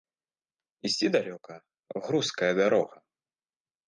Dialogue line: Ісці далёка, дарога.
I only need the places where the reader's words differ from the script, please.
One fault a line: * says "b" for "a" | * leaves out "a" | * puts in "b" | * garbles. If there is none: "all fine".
* puts in "грузкая"